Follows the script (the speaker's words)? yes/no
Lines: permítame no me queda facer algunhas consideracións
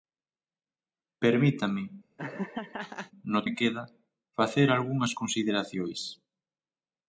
yes